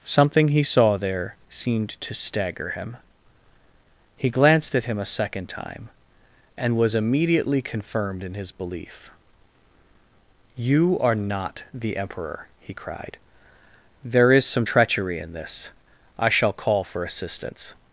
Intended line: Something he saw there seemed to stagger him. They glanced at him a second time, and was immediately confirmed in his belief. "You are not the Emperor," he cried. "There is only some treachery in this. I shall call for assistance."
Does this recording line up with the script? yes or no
no